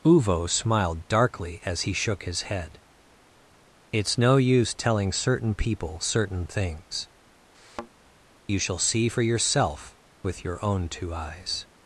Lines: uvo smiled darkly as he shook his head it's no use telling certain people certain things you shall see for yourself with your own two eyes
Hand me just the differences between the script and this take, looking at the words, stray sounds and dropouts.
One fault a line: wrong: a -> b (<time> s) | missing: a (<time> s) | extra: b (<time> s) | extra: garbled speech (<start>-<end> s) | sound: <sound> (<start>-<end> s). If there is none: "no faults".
sound: thud (7.5-7.9 s)